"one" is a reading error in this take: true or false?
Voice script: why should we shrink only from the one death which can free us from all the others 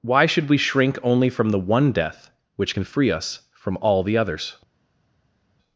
false